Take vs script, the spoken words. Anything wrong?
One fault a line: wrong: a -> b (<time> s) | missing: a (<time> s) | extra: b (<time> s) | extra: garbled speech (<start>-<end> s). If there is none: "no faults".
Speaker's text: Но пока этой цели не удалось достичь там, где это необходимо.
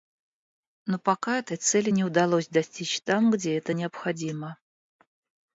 no faults